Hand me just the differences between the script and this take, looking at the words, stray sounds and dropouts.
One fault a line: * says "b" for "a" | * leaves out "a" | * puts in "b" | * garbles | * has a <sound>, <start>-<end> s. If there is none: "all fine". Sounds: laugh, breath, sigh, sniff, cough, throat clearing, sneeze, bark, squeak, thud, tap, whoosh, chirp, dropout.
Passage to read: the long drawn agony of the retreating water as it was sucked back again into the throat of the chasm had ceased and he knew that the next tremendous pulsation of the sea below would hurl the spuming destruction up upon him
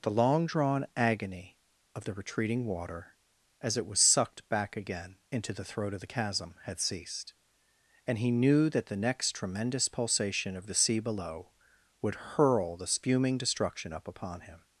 all fine